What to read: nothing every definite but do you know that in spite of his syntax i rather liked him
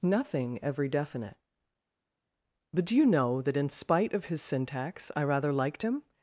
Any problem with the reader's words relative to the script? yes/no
no